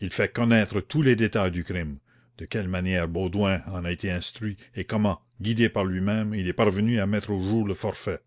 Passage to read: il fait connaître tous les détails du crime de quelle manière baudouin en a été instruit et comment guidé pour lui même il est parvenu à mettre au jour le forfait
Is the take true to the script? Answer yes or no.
no